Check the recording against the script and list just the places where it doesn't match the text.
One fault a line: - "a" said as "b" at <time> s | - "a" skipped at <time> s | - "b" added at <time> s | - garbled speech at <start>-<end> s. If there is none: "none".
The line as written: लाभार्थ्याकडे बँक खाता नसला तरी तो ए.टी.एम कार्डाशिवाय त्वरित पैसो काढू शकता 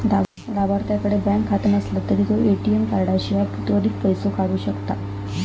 none